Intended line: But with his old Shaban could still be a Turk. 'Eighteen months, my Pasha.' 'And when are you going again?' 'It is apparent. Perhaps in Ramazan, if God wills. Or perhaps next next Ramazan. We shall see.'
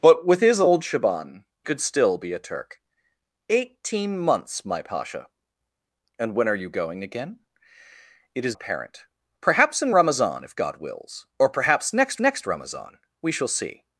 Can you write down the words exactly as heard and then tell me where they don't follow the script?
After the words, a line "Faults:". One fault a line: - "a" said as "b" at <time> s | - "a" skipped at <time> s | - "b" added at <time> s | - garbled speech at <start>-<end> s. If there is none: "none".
But with his old Shaban could still be a Turk. 'Eighteen months, my Pasha.' 'And when are you going again?' 'It is apparent. Perhaps in Ramazan, if God wills. Or perhaps next next Ramazan. We shall see.'
Faults:
none